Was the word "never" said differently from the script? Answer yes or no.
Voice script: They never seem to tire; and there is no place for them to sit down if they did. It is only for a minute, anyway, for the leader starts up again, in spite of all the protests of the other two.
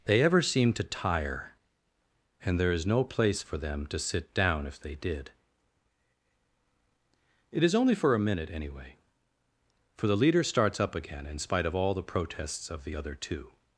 yes